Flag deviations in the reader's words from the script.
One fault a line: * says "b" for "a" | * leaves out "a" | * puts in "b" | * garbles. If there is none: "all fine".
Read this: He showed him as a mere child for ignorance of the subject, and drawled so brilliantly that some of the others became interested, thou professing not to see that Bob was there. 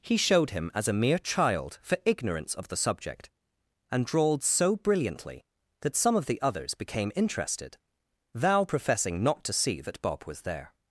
all fine